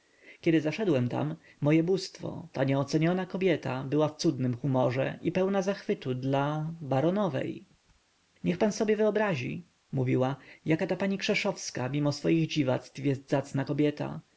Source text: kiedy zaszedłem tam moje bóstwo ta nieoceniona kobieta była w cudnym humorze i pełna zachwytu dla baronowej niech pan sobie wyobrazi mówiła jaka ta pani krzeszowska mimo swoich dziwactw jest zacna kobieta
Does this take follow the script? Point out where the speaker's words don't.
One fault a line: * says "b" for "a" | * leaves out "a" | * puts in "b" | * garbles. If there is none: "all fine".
all fine